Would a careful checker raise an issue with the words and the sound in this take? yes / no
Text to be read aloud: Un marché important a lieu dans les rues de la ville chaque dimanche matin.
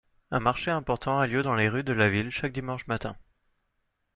no